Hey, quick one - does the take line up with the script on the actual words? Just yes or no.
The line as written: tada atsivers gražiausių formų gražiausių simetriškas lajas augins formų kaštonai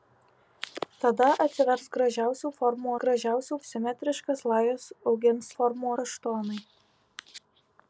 yes